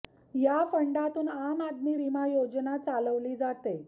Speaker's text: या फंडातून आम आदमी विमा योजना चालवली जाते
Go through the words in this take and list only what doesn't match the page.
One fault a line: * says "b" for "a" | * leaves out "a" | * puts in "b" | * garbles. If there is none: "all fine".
all fine